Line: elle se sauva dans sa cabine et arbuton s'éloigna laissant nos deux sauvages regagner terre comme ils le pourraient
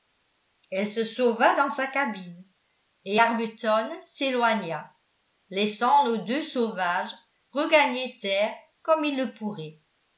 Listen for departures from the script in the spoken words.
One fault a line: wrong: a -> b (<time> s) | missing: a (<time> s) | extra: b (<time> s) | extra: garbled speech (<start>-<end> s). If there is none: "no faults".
no faults